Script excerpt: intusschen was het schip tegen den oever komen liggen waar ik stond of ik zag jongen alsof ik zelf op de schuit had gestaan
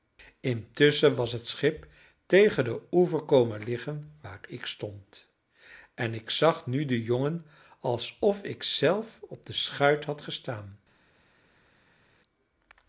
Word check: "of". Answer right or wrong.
wrong